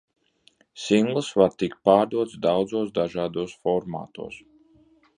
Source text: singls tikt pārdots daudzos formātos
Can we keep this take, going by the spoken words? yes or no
no